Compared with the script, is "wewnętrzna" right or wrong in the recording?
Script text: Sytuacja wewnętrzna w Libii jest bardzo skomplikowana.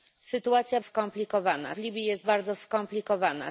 wrong